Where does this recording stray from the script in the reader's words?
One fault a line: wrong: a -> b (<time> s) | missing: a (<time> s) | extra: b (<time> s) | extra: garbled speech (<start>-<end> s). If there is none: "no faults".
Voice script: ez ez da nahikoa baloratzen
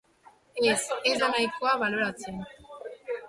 no faults